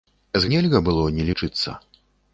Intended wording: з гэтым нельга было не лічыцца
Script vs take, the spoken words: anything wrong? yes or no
yes